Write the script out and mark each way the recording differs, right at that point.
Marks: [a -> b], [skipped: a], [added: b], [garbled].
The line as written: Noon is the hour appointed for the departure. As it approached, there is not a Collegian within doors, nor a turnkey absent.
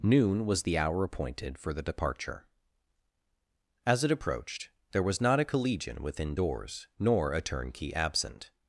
Noon [is -> was] the hour appointed for the departure. As it approached, there [is -> was] not a Collegian within doors, nor a turnkey absent.